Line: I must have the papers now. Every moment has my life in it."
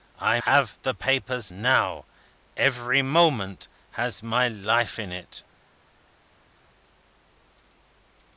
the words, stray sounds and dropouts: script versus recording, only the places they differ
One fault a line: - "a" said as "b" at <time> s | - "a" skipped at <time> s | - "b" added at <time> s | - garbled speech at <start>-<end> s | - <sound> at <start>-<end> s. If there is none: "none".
- "must" skipped at 0.4 s